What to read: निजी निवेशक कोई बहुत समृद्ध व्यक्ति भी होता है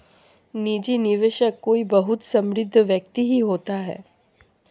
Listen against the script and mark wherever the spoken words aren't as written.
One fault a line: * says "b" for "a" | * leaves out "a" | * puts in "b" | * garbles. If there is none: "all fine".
* says "ही" for "भी"